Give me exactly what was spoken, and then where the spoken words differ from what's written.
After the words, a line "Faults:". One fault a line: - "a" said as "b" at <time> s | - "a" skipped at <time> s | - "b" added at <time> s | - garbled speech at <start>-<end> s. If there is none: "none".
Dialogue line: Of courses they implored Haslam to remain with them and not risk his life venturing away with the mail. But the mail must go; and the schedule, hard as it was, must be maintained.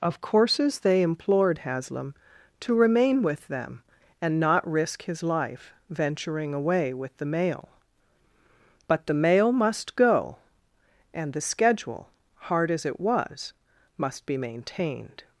Of courses they implored Haslam to remain with them and not risk his life venturing away with the mail. But the mail must go; and the schedule, hard as it was, must be maintained.
Faults:
none